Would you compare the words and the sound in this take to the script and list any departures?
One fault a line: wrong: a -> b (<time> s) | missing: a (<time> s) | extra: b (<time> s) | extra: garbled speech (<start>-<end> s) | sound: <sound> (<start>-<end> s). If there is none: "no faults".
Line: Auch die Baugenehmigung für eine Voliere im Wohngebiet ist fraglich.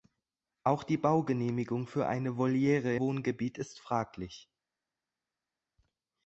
missing: im (3.0 s)